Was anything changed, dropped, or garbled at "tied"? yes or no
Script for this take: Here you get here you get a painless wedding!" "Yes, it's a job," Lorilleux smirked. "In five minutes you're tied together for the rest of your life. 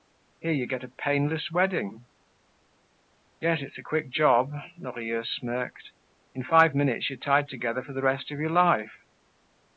no